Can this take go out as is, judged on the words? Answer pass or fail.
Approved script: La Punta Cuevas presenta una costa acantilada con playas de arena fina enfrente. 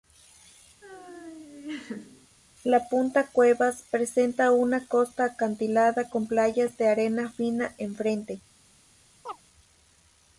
pass